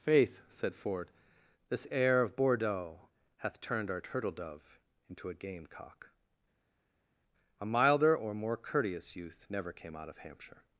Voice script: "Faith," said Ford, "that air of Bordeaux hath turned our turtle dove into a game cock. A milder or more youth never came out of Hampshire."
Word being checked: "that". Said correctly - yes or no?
no